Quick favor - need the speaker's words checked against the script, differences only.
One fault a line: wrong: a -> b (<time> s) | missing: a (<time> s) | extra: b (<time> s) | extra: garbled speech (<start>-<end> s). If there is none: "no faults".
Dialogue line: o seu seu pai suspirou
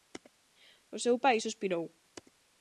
missing: seu (1.2 s)